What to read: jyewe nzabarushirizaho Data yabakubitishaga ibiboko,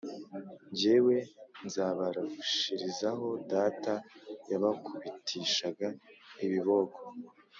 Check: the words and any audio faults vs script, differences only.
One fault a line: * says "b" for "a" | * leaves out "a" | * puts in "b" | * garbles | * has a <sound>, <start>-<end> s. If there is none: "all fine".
all fine